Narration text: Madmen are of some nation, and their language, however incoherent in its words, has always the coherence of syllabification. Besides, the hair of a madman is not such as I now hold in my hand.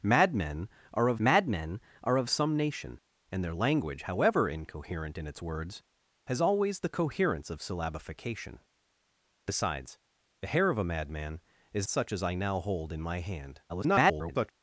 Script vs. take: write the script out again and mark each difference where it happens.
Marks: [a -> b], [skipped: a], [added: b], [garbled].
Madmen are of [added: madmen are of] some nation, and their language, however incoherent in its words, has always the coherence of syllabification. Besides, the hair of a madman is [skipped: not] such as I now hold in my hand. [garbled]